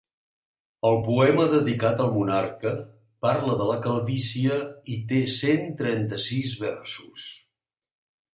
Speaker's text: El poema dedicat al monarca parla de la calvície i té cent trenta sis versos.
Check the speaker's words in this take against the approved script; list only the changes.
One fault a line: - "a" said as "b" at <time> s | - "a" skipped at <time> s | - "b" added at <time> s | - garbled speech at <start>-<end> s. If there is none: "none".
none